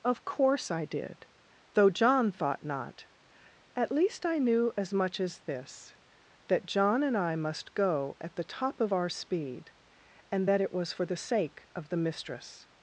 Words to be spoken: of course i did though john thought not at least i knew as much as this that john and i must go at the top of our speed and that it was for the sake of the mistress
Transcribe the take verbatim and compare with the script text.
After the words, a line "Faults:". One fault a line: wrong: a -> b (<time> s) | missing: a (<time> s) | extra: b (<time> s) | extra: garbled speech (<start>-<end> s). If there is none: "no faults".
of course i did though john thought not at least i knew as much as this that john and i must go at the top of our speed and that it was for the sake of the mistress
Faults:
no faults